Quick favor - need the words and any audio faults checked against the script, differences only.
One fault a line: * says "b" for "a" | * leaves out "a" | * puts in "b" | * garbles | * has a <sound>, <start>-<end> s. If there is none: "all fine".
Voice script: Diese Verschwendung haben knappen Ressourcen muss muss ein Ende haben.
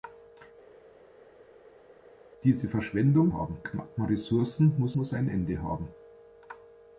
all fine